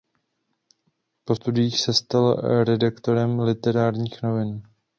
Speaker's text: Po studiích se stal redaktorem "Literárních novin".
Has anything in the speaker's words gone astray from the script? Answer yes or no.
no